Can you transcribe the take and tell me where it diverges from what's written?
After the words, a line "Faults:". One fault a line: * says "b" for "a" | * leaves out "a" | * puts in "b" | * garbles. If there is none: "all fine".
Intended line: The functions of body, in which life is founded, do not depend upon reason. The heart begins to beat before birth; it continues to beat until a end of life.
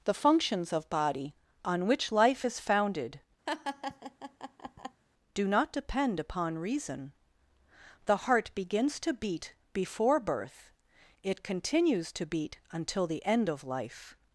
The functions of body, on which life is founded, do not depend upon reason. The heart begins to beat before birth; it continues to beat until the end of life.
Faults:
* says "on" for "in"
* says "the" for "a"